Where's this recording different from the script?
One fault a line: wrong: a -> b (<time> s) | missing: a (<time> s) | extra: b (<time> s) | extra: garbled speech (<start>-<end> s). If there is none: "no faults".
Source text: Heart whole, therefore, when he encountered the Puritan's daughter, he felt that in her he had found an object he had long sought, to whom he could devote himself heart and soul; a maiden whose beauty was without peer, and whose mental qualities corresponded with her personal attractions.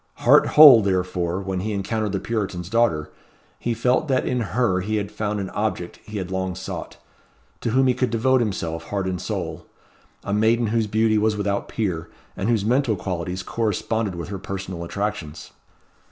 no faults